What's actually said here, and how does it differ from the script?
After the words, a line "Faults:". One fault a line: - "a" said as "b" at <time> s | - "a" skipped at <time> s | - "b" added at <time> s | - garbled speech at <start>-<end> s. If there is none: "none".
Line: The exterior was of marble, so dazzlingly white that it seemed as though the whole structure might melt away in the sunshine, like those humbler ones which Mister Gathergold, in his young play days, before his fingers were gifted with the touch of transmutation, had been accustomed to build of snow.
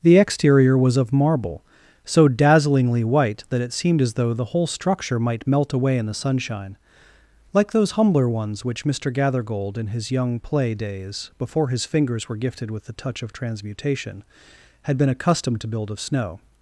The exterior was of marble, so dazzlingly white that it seemed as though the whole structure might melt away in the sunshine, like those humbler ones which Mister Gathergold, in his young play days, before his fingers were gifted with the touch of transmutation, had been accustomed to build of snow.
Faults:
none